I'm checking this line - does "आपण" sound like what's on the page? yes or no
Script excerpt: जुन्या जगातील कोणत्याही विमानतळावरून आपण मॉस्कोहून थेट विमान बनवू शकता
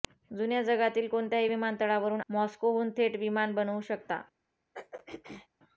no